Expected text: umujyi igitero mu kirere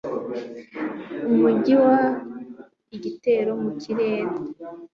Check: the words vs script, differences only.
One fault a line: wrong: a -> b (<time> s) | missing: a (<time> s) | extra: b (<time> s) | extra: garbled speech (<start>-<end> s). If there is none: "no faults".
no faults